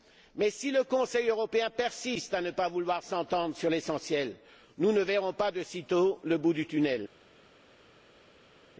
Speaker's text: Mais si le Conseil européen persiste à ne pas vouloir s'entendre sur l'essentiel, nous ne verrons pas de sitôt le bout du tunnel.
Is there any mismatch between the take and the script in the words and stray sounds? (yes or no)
no